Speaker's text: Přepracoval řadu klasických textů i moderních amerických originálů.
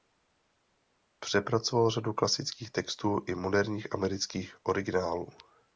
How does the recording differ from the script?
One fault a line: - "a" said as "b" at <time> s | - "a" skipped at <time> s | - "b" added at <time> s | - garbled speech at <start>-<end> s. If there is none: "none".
none